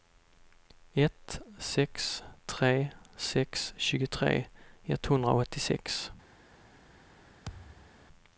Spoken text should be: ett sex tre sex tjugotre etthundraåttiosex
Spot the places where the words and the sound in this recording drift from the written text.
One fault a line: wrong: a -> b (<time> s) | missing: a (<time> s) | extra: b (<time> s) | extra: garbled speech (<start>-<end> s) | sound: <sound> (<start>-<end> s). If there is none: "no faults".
sound: thud (7.5-8.0 s)